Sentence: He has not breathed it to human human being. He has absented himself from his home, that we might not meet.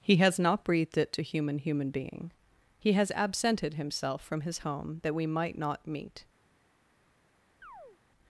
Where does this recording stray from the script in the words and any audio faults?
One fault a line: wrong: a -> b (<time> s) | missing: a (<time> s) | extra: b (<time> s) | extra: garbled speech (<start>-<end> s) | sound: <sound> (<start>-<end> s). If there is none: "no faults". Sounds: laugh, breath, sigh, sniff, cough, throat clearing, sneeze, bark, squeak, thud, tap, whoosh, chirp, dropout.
sound: chirp (7.6-8.0 s)